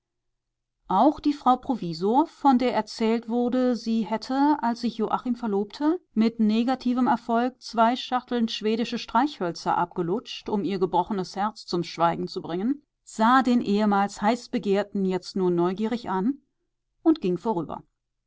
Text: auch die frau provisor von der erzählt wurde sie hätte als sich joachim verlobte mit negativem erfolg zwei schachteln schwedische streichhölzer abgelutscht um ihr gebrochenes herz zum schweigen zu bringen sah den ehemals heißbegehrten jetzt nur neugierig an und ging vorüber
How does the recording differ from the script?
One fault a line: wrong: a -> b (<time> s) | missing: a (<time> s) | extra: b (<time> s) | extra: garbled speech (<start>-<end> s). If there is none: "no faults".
no faults